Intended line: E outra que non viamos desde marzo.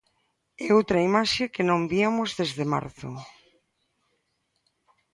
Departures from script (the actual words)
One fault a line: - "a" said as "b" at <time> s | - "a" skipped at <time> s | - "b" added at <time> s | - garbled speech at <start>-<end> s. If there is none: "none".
- "imaxe" added at 1.1 s